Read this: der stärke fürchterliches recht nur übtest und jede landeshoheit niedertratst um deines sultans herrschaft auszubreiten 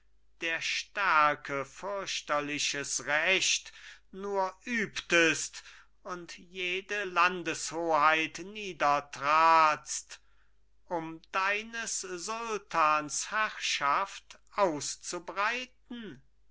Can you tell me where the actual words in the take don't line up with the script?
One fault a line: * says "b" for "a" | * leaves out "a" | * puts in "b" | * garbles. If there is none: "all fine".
all fine